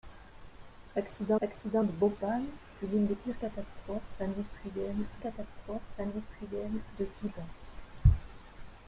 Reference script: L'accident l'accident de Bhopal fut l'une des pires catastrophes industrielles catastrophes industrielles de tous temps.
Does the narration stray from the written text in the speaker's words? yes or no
no